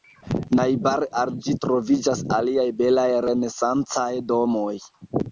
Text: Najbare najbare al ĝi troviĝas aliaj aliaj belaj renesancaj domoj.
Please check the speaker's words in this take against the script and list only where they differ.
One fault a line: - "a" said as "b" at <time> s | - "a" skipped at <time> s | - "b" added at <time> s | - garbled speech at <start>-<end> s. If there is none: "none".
- "najbare" skipped at 1.1 s
- "aliaj" skipped at 2.6 s